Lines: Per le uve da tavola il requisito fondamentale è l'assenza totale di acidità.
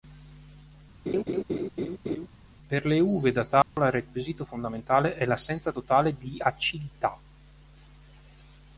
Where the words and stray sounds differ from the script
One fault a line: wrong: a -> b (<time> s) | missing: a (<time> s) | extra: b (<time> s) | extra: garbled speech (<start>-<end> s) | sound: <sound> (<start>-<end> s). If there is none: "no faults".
sound: laugh (1.1-2.3 s)
sound: dropout (3.6-3.8 s)